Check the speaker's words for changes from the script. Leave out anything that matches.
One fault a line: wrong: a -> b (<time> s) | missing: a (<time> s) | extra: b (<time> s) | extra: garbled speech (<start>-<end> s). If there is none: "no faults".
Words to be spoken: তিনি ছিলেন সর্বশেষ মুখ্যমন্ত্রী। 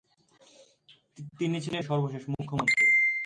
no faults